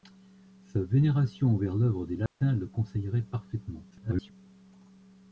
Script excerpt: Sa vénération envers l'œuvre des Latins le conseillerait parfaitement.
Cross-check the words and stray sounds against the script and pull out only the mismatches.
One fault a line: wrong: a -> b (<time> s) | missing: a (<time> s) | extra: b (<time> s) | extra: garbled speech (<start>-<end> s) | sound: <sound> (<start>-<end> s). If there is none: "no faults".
sound: dropout (2.3-2.4 s)
extra: garbled speech (3.9-4.3 s)